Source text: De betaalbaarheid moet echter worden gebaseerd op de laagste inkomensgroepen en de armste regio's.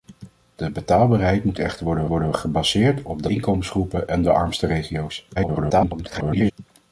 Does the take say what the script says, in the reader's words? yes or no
no